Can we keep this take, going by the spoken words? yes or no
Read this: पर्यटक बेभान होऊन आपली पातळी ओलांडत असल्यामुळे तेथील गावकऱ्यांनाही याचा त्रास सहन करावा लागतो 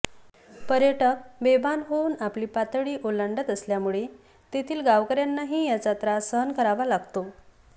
yes